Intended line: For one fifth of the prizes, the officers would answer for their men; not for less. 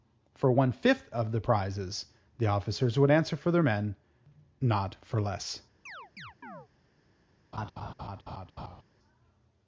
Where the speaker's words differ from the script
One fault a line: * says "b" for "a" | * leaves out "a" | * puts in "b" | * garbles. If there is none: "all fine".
all fine